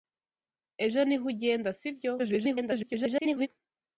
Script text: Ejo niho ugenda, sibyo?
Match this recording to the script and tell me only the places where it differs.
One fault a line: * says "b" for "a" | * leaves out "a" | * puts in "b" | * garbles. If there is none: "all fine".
* garbles